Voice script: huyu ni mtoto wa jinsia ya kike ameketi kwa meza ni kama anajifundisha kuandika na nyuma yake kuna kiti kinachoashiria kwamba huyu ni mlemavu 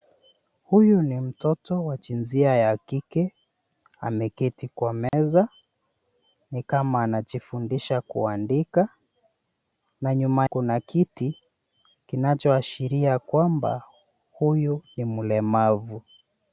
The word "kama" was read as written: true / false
true